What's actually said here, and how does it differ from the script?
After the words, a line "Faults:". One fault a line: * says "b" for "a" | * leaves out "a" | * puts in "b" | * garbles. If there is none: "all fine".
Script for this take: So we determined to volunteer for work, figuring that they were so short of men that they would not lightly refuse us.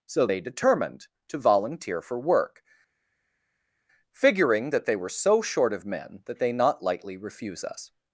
So they determined to volunteer for work, figuring that they were so short of men that they not lightly refuse us.
Faults:
* says "they" for "we"
* leaves out "would"